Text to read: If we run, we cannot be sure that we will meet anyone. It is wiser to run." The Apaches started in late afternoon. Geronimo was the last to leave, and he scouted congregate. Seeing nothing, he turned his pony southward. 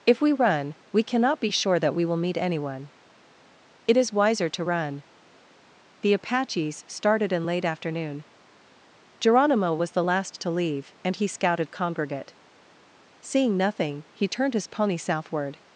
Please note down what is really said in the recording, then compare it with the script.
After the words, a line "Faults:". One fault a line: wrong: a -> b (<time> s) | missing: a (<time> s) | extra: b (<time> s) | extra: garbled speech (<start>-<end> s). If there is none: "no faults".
If we run, we cannot be sure that we will meet anyone. It is wiser to run." The Apaches started in late afternoon. Geronimo was the last to leave, and he scouted congregate. Seeing nothing, he turned his pony southward.
Faults:
no faults